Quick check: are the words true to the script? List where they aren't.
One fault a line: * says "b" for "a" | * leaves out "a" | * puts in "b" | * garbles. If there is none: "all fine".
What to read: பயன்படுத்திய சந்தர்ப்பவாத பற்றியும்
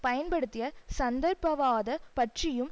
all fine